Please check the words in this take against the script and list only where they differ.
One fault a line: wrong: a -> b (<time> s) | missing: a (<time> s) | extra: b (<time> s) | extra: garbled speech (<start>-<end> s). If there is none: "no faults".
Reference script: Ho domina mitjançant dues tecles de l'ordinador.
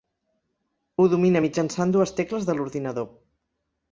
no faults